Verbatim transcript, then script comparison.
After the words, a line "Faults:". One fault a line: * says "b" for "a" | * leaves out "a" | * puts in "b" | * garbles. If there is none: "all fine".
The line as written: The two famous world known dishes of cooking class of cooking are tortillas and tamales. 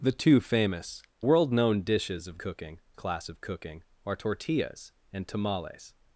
The two famous world known dishes of cooking class of cooking are tortillas and tamales.
Faults:
all fine